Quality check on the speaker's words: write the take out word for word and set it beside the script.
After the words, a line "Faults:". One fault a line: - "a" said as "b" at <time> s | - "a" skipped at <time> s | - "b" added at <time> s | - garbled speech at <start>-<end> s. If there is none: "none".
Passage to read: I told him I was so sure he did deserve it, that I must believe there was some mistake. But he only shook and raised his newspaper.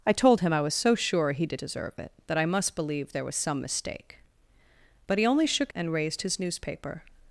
I told him I was so sure he did deserve it, that I must believe there was some mistake. But he only shook and raised his newspaper.
Faults:
none